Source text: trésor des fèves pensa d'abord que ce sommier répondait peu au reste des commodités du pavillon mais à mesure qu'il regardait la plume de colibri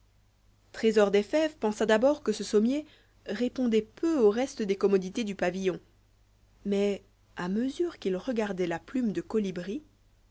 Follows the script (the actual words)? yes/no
yes